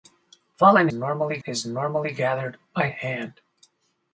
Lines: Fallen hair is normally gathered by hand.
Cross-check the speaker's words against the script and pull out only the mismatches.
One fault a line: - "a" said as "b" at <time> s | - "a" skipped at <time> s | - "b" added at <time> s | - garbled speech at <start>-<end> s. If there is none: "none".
- "hair" said as "normally" at 0.9 s